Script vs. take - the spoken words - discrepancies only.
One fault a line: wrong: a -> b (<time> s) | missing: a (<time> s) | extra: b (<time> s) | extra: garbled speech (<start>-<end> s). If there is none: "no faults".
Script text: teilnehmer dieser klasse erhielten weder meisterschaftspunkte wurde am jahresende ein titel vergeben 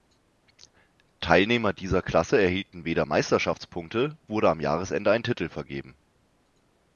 no faults